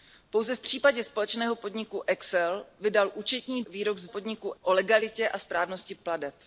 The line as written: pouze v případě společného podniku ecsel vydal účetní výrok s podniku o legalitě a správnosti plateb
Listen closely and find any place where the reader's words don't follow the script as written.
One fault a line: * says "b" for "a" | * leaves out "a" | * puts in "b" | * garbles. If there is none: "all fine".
all fine